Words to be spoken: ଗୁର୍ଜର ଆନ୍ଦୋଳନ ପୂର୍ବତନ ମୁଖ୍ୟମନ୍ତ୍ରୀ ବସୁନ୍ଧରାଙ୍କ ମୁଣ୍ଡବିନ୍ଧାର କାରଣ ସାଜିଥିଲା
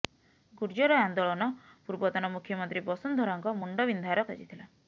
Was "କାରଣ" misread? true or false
true